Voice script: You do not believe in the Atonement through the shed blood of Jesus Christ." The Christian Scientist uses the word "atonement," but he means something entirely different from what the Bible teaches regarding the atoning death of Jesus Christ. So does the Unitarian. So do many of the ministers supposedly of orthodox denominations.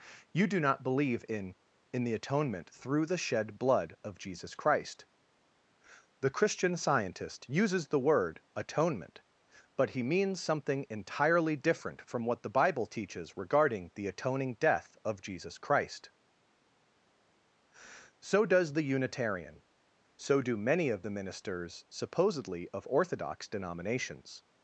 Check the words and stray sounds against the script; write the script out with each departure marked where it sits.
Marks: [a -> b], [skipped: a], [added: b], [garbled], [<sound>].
You do not believe in [added: in] the Atonement through the shed blood of Jesus Christ." The Christian Scientist uses the word "atonement," but he means something entirely different from what the Bible teaches regarding the atoning death of Jesus Christ. So does the Unitarian. So do many of the ministers supposedly of orthodox denominations.